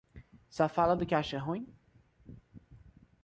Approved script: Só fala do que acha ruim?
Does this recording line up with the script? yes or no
yes